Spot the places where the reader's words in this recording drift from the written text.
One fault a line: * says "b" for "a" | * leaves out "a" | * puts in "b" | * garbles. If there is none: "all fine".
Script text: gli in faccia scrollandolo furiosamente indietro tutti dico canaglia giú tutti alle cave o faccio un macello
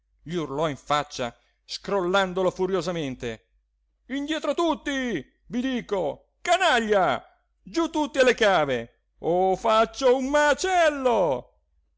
* puts in "urlò"
* puts in "vi"